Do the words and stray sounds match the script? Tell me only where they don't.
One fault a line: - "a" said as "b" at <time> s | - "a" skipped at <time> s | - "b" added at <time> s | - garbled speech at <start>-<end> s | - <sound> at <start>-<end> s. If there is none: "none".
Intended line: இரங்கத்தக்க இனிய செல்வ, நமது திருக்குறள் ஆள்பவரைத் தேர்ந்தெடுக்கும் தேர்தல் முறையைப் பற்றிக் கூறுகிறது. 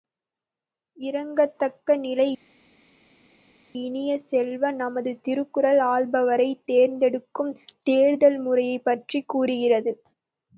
- "நிலை" added at 2.0 s